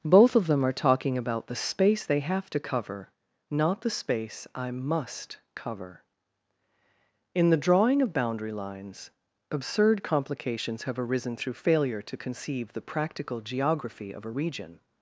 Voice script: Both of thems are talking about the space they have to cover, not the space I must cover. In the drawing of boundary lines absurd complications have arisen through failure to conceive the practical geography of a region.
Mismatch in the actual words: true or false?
true